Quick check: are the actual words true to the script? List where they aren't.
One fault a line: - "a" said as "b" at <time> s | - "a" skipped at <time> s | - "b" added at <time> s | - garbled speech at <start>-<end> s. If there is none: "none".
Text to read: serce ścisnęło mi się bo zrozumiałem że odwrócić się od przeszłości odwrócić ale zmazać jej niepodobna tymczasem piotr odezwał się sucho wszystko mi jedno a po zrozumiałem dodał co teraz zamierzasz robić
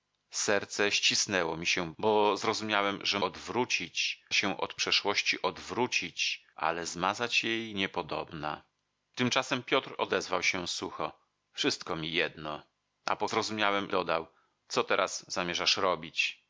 none